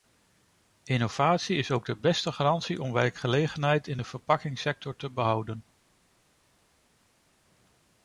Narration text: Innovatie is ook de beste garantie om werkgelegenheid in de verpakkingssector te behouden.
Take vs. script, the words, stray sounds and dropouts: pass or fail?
pass